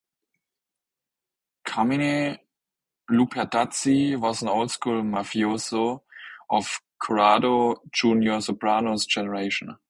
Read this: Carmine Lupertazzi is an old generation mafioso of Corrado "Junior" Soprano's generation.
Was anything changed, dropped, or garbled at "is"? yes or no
yes